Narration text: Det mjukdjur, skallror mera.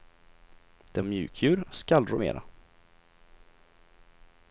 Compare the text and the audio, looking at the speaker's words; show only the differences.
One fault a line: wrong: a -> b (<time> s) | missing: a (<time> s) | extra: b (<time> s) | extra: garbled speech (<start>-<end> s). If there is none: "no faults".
no faults